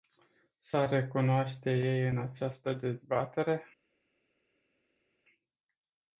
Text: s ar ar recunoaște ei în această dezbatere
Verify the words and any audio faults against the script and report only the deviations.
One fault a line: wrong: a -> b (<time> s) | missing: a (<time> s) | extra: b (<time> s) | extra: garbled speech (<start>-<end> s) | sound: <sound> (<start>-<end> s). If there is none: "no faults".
missing: ar (0.9 s)